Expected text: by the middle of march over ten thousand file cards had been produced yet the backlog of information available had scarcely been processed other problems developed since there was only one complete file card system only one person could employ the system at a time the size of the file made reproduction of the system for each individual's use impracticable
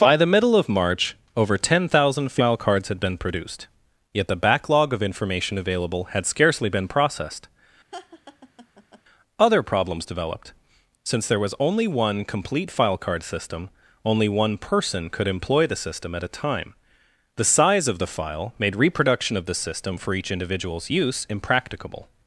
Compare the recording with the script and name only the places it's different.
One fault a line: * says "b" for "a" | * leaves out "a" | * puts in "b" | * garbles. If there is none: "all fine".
all fine